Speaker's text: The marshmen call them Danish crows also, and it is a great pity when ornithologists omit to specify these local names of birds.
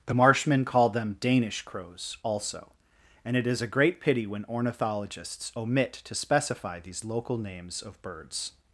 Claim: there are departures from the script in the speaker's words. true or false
false